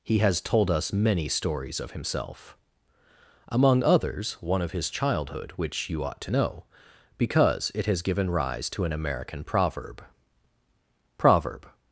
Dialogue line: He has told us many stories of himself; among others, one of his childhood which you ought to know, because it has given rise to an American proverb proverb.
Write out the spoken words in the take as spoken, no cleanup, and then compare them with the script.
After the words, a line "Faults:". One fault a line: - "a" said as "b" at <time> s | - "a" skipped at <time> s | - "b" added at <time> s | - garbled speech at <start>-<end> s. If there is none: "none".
He has told us many stories of himself; among others, one of his childhood which you ought to know, because it has given rise to an American proverb proverb.
Faults:
none